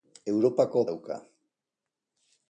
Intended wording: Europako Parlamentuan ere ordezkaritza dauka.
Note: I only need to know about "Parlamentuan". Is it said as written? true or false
false